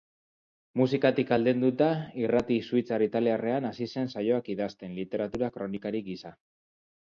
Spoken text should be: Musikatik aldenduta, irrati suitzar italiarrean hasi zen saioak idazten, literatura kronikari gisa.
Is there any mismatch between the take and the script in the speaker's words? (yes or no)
no